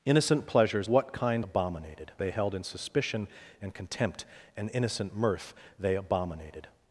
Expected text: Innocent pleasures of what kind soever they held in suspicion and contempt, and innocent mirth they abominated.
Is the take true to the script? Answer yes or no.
no